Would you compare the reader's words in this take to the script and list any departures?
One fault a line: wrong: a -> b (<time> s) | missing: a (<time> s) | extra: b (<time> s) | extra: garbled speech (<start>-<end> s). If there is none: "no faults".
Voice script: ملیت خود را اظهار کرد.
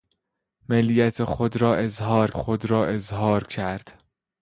extra: خود را اظهار (2.3 s)